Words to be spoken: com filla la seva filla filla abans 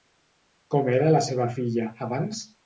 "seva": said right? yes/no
yes